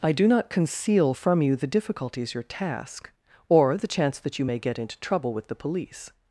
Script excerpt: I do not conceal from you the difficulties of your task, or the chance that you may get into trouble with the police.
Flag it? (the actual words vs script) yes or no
yes